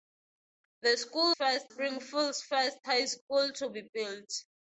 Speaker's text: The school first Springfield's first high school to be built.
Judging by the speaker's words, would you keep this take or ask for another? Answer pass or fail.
pass